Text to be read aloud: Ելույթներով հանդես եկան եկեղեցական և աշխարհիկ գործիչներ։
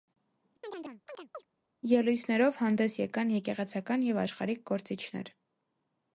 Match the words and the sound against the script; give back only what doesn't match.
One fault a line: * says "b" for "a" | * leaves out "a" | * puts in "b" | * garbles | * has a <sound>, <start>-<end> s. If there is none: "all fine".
* has a chirp, 0.6-1.5 s